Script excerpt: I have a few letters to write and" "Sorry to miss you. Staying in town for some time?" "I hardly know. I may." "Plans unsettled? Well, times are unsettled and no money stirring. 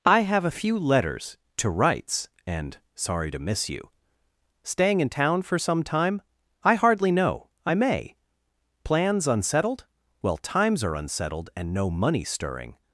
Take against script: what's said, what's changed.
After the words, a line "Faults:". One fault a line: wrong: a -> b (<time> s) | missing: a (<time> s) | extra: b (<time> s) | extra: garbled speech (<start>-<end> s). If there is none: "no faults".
I have a few letters to writes and" "Sorry to miss you. Staying in town for some time?" "I hardly know. I may." "Plans unsettled? Well, times are unsettled and no money stirring.
Faults:
wrong: write -> writes (1.7 s)